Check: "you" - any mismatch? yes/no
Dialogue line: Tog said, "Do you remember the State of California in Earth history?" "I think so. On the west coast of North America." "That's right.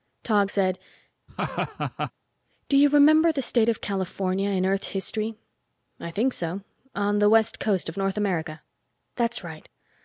no